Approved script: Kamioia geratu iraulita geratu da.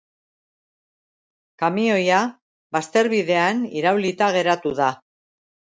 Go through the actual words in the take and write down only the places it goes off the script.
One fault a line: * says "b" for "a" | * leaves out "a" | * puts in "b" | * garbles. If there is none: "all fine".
* says "bazterbidean" for "geratu"